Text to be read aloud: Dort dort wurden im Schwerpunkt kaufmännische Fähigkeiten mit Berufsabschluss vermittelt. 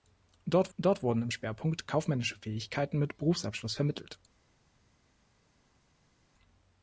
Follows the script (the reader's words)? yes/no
yes